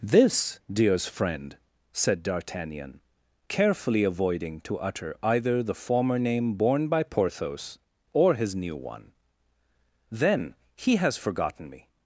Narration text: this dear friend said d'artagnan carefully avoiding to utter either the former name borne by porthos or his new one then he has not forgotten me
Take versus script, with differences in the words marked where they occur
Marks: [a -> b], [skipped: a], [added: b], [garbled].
this [dear -> dears] friend said d'artagnan carefully avoiding to utter either the former name borne by porthos or his new one then he has [skipped: not] forgotten me